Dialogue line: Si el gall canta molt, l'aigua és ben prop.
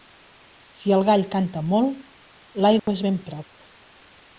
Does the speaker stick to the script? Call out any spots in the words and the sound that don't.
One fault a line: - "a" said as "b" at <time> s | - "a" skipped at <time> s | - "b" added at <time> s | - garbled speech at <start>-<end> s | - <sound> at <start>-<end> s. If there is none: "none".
- dropout at 2.8-2.9 s